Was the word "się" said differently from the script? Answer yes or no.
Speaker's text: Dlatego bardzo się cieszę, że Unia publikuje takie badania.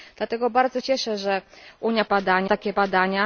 yes